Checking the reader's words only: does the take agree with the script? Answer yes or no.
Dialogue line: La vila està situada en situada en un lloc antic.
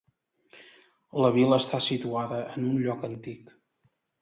no